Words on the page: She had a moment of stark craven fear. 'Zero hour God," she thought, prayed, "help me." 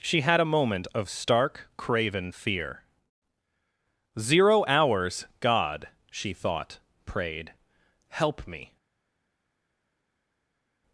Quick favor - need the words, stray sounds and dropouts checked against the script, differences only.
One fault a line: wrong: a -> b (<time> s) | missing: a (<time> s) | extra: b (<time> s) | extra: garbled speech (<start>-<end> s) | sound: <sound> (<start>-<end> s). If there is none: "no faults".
wrong: hour -> hours (4.7 s)